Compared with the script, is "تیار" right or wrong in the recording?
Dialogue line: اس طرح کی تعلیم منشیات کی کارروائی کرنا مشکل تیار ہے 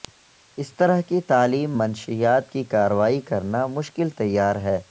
right